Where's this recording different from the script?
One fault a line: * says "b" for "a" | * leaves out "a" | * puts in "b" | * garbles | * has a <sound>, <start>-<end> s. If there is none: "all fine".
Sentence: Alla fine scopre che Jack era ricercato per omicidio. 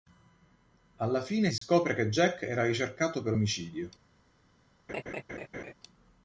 * has a dropout, 1.6-1.6 s
* has a laugh, 4.9-5.7 s